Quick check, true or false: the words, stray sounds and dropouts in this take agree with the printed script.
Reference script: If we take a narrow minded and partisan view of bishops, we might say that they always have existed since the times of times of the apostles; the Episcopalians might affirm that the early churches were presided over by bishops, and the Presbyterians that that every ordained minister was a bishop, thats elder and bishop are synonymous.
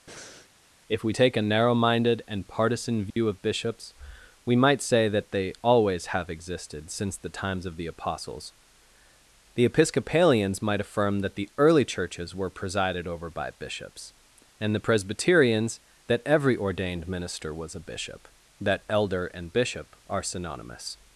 false